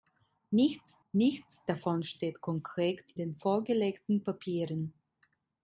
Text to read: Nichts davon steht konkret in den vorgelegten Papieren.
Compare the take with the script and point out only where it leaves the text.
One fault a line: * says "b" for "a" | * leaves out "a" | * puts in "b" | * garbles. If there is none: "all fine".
* puts in "nichts"
* leaves out "in"